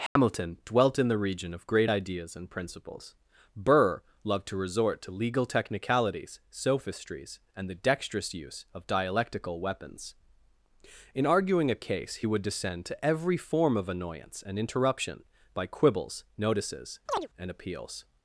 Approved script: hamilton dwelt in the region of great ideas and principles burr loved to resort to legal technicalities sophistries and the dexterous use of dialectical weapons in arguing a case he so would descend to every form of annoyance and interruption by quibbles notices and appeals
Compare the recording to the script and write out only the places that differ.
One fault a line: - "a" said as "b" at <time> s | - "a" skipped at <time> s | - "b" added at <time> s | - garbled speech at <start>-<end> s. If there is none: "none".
- "so" skipped at 12.3 s